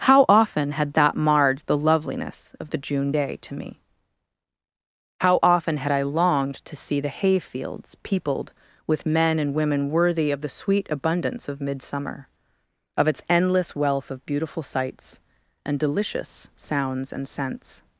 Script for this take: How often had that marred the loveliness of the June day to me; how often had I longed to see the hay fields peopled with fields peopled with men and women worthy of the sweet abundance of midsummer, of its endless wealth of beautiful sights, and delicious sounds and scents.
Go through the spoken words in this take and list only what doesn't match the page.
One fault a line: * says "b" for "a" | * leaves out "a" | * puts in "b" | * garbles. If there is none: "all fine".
* leaves out "fields peopled with"